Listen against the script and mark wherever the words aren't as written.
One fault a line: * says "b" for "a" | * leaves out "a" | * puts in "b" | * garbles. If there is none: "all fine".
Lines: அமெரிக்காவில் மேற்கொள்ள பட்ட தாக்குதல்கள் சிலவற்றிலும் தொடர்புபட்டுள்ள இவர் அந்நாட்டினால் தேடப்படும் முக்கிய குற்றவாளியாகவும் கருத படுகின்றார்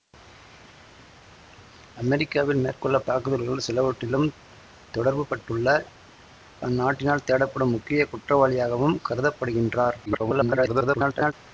* leaves out "பட்ட"
* leaves out "இவர்"
* garbles